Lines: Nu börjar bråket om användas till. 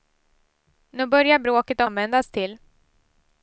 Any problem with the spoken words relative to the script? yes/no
no